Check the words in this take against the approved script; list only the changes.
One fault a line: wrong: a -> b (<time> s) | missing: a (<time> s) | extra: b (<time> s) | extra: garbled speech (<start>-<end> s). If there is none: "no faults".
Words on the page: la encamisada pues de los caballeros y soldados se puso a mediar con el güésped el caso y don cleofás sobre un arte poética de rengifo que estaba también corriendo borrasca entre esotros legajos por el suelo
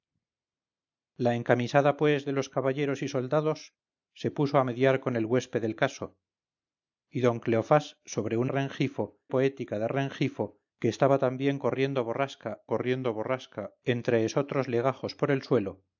wrong: arte -> rengifo (8.5 s)
extra: corriendo borrasca (12.6 s)